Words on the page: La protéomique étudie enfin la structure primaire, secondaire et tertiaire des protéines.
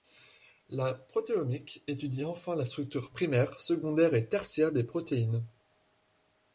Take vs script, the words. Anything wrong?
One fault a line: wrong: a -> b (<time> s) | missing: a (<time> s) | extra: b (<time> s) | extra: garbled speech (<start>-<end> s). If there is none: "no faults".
no faults